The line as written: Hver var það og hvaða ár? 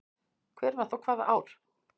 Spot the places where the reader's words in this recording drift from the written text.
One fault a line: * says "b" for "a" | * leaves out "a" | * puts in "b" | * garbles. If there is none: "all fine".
* leaves out "það"